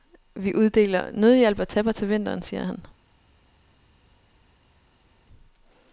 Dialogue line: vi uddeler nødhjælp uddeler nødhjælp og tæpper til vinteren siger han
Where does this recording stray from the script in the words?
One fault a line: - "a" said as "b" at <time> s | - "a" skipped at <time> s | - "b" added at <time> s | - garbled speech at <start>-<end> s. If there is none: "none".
- "uddeler nødhjælp" skipped at 1.6 s